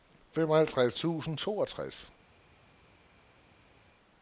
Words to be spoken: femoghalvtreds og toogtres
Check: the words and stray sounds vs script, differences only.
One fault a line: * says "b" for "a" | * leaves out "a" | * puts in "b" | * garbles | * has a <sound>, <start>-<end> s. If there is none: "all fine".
* puts in "tusind"